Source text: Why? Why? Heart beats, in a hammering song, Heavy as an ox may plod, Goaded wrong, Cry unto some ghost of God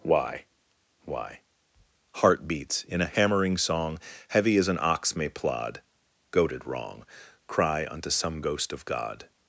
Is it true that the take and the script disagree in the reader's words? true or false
false